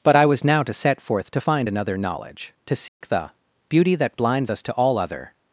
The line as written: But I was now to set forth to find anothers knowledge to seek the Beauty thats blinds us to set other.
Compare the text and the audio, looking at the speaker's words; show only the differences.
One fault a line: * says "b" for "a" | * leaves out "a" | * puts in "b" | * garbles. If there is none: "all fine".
* says "another" for "anothers"
* says "that" for "thats"
* says "all" for "set"